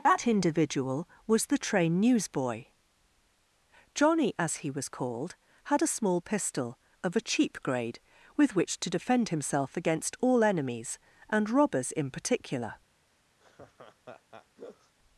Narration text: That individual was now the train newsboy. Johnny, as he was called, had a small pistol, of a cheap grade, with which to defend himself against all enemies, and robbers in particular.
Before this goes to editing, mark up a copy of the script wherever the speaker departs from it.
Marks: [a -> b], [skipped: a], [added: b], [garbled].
That individual was [skipped: now] the train newsboy. Johnny, as he was called, had a small pistol, of a cheap grade, with which to defend himself against all enemies, and robbers in particular.